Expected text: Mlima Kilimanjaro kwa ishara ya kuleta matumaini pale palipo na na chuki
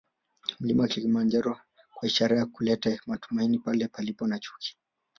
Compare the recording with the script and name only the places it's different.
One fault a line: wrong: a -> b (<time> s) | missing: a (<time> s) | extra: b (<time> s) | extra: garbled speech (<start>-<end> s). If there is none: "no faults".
missing: na (4.4 s)